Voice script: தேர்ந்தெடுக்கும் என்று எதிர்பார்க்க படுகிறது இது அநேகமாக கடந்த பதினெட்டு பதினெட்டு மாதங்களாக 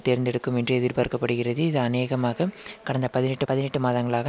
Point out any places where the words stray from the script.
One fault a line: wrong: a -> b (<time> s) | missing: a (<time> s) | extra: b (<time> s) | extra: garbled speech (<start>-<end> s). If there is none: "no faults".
no faults